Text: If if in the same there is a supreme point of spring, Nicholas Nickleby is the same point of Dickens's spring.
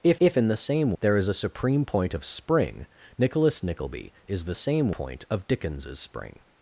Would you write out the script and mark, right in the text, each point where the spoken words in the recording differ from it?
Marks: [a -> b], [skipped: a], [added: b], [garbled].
If if in the same there is a supreme point of spring, Nicholas Nickleby is the same point of Dickens's spring.